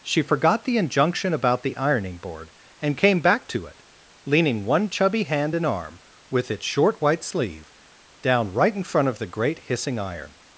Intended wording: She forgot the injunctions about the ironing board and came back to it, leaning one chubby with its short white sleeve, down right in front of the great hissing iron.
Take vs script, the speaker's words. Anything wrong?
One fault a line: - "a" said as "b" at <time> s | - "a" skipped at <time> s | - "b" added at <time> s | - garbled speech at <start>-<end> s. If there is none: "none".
- "injunctions" said as "injunction" at 0.8 s
- "hand and arm" added at 5.2 s